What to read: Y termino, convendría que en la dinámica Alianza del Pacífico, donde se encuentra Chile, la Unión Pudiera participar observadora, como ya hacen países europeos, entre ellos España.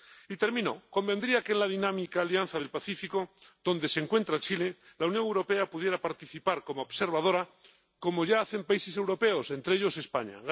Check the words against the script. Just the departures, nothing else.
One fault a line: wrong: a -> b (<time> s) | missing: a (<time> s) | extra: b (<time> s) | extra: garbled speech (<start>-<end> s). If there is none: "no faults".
extra: Europea (5.2 s)
extra: como (6.6 s)